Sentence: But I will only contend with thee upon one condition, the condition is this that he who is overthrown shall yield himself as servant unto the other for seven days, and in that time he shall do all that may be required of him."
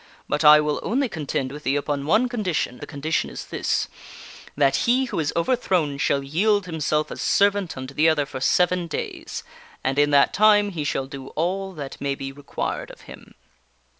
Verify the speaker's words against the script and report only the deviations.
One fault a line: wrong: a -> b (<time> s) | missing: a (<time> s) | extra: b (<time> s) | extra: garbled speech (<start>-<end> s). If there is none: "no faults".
no faults